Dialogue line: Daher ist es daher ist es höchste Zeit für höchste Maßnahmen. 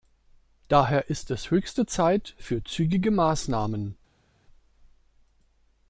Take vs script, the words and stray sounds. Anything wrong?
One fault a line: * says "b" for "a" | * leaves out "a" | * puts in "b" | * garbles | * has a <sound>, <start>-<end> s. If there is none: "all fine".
* leaves out "daher ist es"
* says "zügige" for "höchste"